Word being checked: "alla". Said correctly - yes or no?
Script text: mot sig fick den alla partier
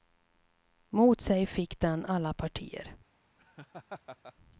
yes